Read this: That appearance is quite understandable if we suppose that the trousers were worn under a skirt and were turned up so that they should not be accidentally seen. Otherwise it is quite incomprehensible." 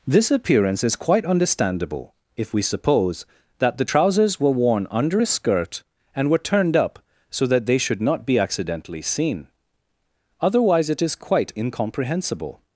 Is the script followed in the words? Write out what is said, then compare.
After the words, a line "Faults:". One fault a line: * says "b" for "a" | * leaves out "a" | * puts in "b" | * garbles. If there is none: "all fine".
This appearance is quite understandable if we suppose that the trousers were worn under a skirt and were turned up so that they should not be accidentally seen. Otherwise it is quite incomprehensible."
Faults:
* says "This" for "That"